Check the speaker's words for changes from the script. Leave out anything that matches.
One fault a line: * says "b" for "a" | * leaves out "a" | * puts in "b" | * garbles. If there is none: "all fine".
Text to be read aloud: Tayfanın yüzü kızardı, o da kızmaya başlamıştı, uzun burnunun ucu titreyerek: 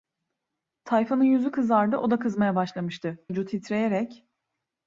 * leaves out "uzun burnunun"